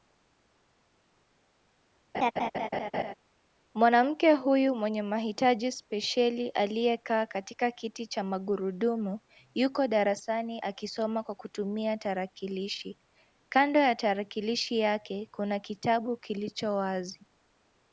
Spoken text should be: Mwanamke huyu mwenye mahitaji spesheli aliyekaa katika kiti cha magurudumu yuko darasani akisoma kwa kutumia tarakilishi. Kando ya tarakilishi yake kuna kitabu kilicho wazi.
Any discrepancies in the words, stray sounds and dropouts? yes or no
yes